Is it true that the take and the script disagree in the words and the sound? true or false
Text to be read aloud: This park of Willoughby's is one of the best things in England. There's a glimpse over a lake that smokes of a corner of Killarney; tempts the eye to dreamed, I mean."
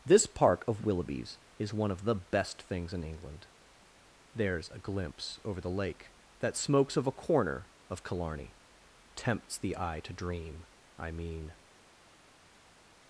true